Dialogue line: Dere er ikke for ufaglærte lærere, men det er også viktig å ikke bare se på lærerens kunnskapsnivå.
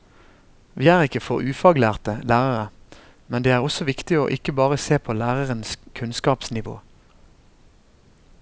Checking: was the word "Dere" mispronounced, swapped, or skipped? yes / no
yes